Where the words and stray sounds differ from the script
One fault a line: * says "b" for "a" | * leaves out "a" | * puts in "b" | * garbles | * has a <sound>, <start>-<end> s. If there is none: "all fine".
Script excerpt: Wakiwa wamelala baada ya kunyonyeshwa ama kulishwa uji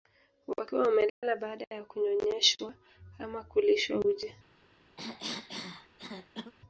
* has a dropout, 1.1-1.2 s
* has a cough, 5.0-6.5 s